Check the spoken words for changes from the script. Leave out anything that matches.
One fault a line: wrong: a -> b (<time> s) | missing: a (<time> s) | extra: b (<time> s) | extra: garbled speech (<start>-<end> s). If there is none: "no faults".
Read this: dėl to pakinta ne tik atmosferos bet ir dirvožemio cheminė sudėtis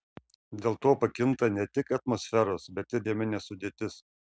missing: dirvožemio (3.1 s)